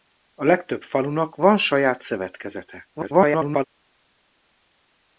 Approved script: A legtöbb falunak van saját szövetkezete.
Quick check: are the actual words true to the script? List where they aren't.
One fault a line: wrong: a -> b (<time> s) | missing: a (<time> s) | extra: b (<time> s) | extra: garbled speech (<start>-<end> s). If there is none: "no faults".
extra: garbled speech (2.9-3.6 s)